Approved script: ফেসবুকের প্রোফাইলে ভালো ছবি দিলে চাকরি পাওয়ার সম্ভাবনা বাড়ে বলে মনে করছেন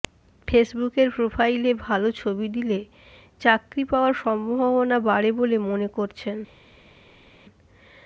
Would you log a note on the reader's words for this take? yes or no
no